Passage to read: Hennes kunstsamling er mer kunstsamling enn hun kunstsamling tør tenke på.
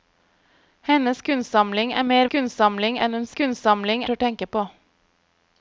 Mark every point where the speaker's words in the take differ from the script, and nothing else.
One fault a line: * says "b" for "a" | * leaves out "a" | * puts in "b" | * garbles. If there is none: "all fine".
all fine